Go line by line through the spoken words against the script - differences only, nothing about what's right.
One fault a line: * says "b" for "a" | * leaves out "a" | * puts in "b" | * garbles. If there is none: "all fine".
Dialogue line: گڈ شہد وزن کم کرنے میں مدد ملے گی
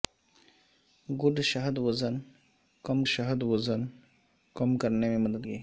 * puts in "شہد وزن کم"
* leaves out "ملے"